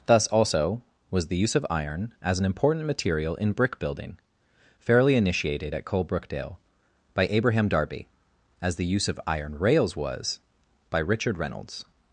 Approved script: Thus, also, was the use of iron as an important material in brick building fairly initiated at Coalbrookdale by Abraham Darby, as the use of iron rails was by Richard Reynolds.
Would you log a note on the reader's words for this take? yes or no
no